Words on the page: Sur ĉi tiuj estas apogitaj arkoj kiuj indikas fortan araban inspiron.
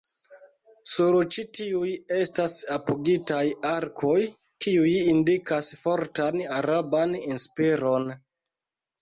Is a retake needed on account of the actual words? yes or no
no